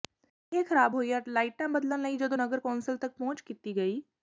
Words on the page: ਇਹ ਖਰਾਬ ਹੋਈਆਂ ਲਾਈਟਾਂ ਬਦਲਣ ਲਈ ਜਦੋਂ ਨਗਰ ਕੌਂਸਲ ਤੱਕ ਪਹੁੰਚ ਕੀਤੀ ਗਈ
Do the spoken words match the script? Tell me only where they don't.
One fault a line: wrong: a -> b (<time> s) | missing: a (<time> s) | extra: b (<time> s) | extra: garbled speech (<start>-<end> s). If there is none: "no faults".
no faults